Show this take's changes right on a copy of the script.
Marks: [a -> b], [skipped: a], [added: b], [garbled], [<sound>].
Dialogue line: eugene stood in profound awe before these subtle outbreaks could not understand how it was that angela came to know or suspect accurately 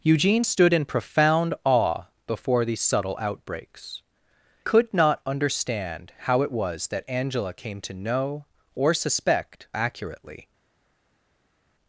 eugene stood in profound awe before these subtle outbreaks could not understand how it was that angela came to know or suspect accurately